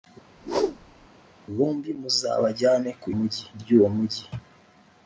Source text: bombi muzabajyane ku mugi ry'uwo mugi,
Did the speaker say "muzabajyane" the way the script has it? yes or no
yes